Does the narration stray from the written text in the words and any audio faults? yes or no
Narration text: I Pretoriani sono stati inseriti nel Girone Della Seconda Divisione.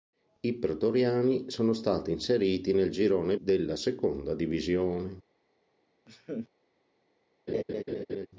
yes